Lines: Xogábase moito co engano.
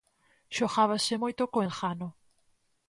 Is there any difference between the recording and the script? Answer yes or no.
no